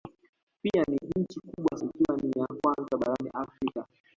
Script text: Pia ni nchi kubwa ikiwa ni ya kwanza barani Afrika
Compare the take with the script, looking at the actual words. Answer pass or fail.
pass